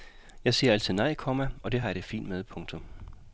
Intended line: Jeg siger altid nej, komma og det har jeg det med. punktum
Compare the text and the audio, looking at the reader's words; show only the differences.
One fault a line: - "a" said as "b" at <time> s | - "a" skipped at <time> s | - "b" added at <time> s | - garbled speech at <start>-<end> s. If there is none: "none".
- "fint" added at 2.0 s